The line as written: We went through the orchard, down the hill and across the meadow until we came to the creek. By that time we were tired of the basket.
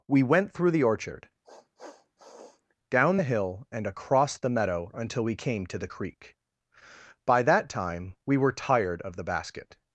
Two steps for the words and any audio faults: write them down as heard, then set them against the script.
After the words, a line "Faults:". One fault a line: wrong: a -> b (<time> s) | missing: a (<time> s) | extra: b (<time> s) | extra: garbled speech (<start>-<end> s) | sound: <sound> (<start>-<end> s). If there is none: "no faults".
We went through the orchard, down the hill and across the meadow until we came to the creek. By that time we were tired of the basket.
Faults:
sound: sniff (1.4-2.7 s)